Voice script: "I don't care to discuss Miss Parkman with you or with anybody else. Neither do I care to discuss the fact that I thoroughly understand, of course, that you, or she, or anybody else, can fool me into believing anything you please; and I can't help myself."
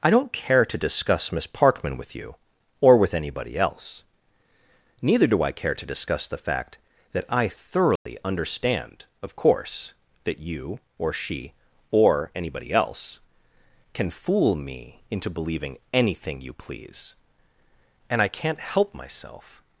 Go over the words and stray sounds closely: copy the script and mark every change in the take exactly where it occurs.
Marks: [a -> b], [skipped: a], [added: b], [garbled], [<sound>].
"I don't care to discuss Miss Parkman with you or with anybody else. Neither do I care to discuss the fact that I thoroughly [dropout] understand, of course, that you, or she, or anybody else, can fool me into believing anything you please; and I can't help myself."